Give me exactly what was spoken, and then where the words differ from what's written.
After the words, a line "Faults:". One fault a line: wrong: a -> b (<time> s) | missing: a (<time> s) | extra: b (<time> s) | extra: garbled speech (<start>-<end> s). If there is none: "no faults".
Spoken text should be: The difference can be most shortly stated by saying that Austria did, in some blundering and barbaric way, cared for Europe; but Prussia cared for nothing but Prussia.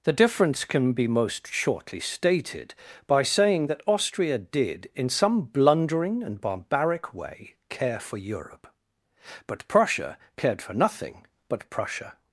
The difference can be most shortly stated by saying that Austria did, in some blundering and barbaric way, care for Europe; but Prussia cared for nothing but Prussia.
Faults:
wrong: cared -> care (7.7 s)